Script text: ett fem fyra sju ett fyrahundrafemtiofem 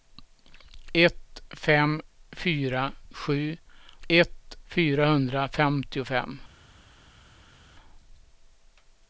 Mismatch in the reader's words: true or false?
false